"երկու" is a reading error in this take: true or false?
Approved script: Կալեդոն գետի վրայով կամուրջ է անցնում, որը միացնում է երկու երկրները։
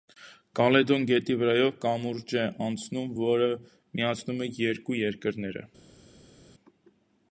false